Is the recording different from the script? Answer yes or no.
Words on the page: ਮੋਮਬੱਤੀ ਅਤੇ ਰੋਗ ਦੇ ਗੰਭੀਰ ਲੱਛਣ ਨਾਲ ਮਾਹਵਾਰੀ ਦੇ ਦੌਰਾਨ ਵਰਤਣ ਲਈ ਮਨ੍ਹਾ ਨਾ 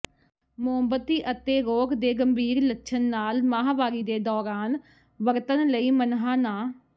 no